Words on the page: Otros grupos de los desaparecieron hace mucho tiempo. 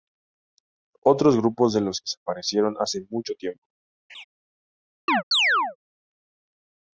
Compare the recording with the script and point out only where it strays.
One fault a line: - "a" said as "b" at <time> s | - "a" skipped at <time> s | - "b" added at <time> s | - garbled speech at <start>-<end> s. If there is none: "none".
none